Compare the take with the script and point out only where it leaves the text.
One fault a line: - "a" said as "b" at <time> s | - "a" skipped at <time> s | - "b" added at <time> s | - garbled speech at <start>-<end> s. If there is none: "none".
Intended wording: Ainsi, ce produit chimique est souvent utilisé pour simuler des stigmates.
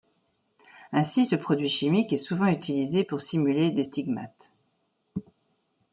none